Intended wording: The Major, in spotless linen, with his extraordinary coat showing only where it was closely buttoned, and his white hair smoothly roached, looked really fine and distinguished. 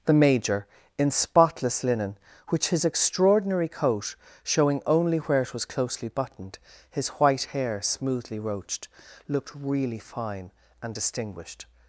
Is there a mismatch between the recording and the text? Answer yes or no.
yes